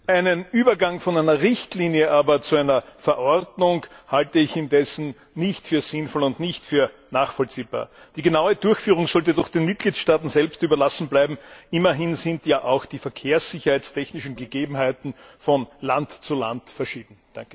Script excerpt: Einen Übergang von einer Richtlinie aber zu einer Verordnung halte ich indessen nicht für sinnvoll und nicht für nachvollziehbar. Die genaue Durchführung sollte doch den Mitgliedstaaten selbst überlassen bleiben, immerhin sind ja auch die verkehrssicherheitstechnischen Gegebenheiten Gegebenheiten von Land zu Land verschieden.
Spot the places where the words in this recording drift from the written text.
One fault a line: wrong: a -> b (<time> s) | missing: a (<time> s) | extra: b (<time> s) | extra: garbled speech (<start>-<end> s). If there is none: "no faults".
missing: Gegebenheiten (15.1 s)